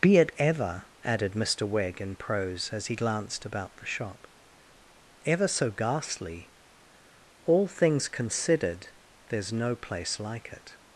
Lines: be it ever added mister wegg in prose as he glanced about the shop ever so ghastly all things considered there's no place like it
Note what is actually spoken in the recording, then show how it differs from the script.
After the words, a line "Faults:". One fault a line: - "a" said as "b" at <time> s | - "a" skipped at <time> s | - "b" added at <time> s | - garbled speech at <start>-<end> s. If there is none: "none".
be it ever added mister wegg in prose as he glanced about the shop ever so ghastly all things considered there's no place like it
Faults:
none